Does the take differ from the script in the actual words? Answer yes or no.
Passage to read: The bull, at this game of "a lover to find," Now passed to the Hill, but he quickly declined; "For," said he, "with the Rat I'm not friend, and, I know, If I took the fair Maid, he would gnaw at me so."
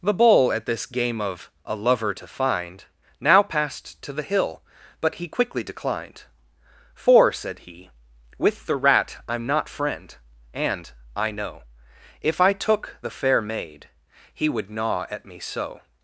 no